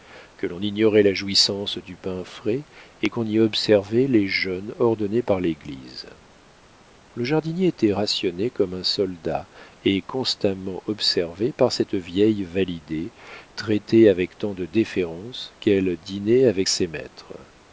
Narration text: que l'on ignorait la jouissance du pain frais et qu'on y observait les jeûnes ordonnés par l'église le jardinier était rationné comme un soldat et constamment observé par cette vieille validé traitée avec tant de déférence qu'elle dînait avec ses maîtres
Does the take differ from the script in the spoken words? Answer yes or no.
no